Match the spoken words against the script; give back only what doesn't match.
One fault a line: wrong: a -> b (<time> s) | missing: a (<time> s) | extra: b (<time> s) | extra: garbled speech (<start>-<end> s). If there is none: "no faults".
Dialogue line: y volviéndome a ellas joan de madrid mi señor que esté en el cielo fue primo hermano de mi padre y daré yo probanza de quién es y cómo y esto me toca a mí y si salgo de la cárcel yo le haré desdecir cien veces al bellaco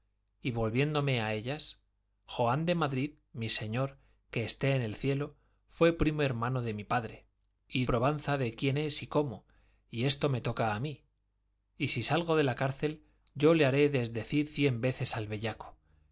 missing: daré yo (7.8 s)